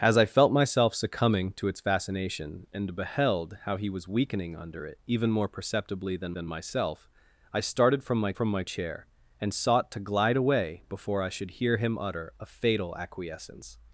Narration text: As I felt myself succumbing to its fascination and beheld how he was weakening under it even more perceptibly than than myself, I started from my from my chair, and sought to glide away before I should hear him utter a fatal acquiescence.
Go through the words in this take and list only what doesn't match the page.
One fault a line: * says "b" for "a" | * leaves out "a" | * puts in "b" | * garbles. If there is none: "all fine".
all fine